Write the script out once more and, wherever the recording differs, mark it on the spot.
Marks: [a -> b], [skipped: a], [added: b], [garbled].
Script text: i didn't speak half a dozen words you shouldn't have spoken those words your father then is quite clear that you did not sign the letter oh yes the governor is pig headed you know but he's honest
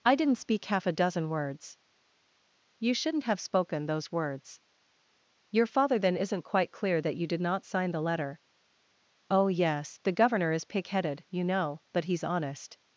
i didn't speak half a dozen words you shouldn't have spoken those words your father then [is -> isn't] quite clear that you did not sign the letter oh yes the governor is pig headed you know but he's honest